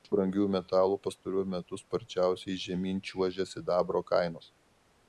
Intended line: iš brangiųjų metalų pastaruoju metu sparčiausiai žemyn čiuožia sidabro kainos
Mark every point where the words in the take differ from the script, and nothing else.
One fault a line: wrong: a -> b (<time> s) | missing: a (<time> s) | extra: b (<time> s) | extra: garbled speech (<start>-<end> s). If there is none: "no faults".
no faults